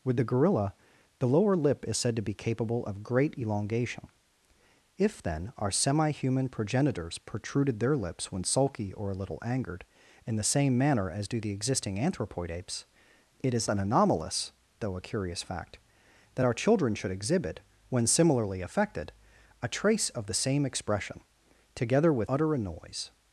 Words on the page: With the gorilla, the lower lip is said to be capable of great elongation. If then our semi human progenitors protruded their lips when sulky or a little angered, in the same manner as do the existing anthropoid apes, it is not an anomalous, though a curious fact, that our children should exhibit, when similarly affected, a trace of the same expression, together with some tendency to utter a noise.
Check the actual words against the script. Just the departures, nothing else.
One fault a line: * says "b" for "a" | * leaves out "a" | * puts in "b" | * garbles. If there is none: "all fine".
* leaves out "not"
* leaves out "some tendency to"